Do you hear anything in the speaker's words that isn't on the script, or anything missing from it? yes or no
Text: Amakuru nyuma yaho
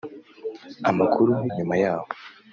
no